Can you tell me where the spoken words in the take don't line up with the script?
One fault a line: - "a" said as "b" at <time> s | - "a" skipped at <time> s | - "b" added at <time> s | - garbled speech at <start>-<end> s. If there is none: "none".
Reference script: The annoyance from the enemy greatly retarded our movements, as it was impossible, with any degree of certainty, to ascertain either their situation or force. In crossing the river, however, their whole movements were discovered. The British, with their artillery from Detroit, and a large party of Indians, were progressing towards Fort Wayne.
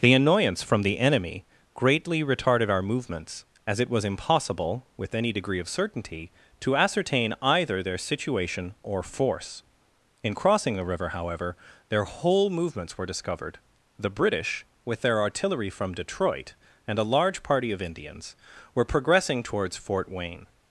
none